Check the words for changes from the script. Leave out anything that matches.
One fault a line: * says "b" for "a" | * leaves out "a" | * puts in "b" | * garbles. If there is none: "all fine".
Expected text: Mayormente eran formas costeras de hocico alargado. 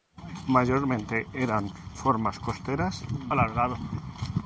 * leaves out "de hocico"